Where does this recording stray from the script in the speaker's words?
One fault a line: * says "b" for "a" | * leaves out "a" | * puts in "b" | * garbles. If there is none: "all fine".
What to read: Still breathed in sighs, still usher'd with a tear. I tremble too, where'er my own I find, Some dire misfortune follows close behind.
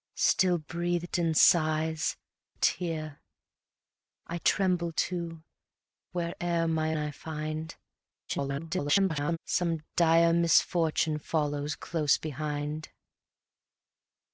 * leaves out "still usher'd with"
* leaves out "own"
* garbles